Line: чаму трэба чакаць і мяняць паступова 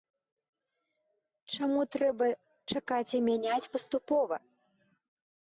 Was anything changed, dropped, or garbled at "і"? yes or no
no